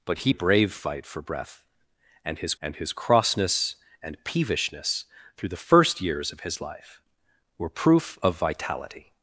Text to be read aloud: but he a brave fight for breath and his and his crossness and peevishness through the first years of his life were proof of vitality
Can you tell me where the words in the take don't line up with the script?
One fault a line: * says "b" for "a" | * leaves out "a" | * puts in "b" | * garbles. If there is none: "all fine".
all fine